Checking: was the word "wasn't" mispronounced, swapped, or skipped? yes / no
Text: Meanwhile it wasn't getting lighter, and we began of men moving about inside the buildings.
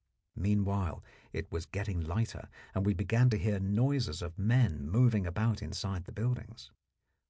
yes